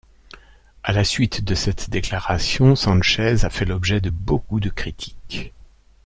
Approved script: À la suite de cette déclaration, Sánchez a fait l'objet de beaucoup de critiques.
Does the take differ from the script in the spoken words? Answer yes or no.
no